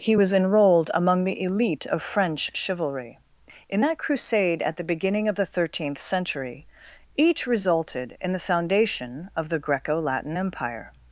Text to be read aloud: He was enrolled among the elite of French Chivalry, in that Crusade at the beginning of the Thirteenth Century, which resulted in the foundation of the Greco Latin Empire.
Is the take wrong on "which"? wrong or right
wrong